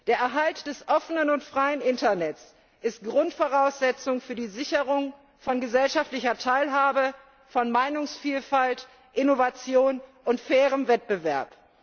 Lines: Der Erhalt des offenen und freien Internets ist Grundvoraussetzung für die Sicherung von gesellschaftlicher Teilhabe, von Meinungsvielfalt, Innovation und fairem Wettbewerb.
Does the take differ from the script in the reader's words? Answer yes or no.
no